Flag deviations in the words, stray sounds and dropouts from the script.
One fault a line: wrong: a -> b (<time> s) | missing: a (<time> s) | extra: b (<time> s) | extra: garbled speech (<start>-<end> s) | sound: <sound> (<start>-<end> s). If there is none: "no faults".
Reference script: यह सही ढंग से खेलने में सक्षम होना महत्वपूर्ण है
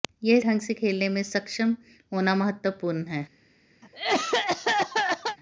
missing: सही (0.4 s)
sound: cough (3.8-5.4 s)